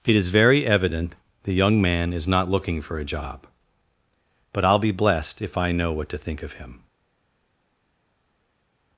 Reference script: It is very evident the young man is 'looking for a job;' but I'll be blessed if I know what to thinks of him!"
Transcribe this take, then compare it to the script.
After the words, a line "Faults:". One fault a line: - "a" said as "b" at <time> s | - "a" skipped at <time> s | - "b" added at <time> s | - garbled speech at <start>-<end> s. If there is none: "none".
It is very evident the young man is not 'looking for a job;' but I'll be blessed if I know what to think of him!"
Faults:
- "not" added at 2.3 s
- "thinks" said as "think" at 6.2 s